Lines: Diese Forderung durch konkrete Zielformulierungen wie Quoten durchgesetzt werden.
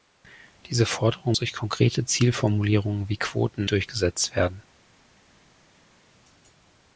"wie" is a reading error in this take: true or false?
false